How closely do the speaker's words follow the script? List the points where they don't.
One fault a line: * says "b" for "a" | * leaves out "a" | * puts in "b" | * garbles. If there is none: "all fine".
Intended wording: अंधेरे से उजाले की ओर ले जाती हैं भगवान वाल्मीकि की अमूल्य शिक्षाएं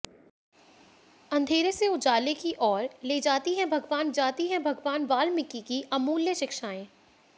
* puts in "जाती हैं भगवान"